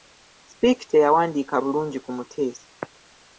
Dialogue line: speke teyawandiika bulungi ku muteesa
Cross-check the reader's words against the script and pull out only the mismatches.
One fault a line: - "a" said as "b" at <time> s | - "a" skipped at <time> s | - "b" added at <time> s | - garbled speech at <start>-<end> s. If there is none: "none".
none